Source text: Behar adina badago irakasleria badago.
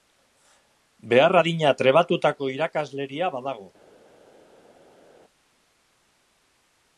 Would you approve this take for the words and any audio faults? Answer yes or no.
no